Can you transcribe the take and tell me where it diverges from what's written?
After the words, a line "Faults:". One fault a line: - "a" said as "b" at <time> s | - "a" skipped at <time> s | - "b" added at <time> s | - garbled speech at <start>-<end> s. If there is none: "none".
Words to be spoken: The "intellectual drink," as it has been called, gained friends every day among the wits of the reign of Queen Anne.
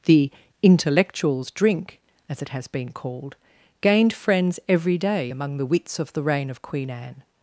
The "intellectuals drink," as it has been called, gained friends every day among the wits of the reign of Queen Anne.
Faults:
- "intellectual" said as "intellectuals" at 0.6 s